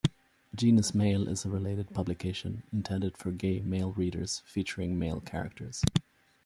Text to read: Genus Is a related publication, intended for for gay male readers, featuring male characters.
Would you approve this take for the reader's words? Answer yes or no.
no